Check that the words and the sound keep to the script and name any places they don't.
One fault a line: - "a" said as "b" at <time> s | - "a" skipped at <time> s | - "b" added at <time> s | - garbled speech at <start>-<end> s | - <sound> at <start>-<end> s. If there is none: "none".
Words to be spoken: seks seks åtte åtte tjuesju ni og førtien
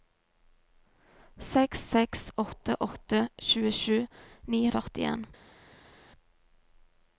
none